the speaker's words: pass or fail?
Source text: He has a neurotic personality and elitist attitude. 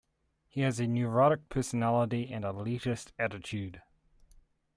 pass